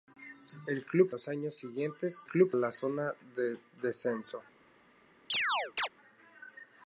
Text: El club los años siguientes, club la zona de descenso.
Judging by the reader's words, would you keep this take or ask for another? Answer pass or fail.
pass